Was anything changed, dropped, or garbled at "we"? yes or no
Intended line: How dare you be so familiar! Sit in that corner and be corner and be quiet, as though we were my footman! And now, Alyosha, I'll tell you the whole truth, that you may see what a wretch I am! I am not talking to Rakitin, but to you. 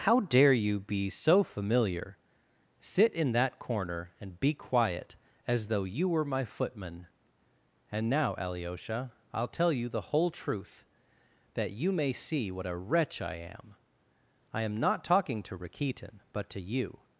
yes